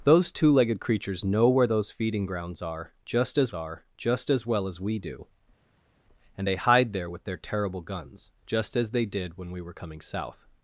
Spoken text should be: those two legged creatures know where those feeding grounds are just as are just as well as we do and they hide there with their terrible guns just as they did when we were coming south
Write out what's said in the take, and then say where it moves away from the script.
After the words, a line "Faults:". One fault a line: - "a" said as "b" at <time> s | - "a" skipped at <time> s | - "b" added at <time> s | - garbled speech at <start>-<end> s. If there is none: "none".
those two legged creatures know where those feeding grounds are just as are just as well as we do and they hide there with their terrible guns just as they did when we were coming south
Faults:
none